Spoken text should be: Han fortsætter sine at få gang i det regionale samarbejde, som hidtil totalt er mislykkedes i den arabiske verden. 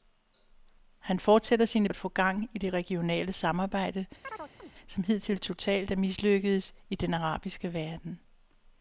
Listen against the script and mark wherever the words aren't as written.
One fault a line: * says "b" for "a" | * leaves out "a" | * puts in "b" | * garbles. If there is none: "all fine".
all fine